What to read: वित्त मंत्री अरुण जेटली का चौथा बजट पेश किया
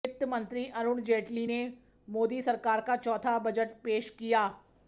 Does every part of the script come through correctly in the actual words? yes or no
no